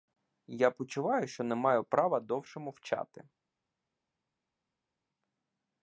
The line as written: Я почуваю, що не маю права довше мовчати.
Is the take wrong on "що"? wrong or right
right